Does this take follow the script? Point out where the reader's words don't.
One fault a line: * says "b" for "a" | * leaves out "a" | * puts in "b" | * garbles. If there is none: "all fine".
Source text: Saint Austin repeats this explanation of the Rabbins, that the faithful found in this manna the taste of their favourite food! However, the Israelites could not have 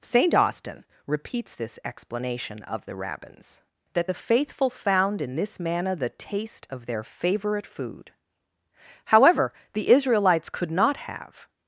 all fine